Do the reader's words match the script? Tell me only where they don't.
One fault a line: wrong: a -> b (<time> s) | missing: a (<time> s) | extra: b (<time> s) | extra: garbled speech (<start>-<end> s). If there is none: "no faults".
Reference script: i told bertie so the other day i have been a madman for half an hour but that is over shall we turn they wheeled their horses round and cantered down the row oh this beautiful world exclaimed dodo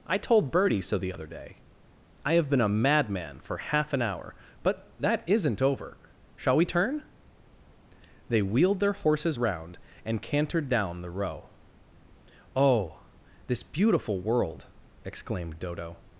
wrong: is -> isn't (5.3 s)